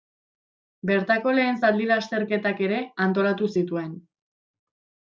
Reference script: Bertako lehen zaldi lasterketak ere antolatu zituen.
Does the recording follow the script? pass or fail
pass